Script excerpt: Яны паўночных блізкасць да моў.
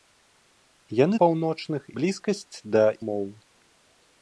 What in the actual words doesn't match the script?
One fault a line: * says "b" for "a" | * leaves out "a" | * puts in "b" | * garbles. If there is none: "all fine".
all fine